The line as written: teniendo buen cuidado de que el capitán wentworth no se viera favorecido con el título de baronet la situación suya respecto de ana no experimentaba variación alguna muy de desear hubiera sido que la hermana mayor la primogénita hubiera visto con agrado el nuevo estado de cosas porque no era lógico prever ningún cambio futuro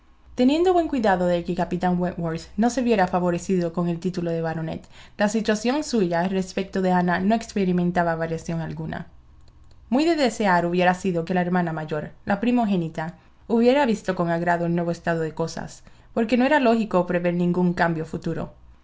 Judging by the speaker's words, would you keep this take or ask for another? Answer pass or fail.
pass